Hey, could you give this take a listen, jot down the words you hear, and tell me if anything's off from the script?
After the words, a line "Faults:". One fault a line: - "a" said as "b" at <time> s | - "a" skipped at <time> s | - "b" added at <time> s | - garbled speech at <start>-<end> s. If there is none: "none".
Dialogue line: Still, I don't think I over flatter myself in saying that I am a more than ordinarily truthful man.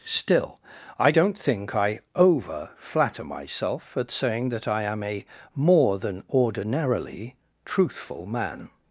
Still, I don't think I over flatter myself at saying that I am a more than ordinarily truthful man.
Faults:
- "in" said as "at" at 4.0 s